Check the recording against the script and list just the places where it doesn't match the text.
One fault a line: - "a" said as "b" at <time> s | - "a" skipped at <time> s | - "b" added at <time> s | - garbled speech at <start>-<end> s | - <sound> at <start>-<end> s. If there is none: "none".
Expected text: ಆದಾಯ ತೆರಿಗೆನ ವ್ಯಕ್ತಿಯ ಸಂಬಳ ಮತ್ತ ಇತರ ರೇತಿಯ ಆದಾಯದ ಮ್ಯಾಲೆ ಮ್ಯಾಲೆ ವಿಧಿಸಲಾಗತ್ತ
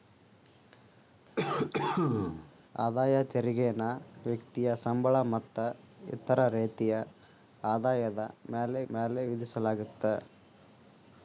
- cough at 1.4-2.5 s